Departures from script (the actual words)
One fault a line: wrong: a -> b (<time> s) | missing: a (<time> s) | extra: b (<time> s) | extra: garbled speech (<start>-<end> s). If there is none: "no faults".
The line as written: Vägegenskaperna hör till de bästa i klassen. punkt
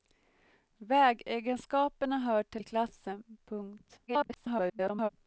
missing: de bästa (2.6 s)
extra: garbled speech (4.1-5.1 s)